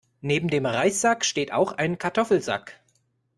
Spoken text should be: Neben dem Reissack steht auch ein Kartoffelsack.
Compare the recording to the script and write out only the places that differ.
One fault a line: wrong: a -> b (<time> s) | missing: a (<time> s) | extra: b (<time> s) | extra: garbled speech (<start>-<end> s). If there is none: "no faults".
no faults